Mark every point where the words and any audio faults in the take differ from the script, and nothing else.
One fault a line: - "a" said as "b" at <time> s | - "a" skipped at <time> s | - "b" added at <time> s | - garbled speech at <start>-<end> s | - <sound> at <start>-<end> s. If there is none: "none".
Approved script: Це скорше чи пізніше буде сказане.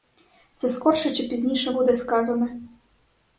none